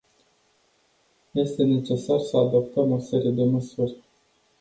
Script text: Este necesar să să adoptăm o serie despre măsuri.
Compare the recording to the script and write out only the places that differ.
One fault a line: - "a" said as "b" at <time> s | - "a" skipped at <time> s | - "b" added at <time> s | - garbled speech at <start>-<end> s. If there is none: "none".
- "să" skipped at 2.4 s
- "despre" said as "de" at 3.3 s